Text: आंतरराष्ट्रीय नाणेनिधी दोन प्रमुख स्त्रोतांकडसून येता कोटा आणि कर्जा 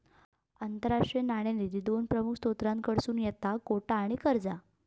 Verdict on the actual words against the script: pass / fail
pass